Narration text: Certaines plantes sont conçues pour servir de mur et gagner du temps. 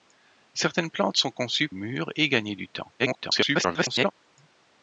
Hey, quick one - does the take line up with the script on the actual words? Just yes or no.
no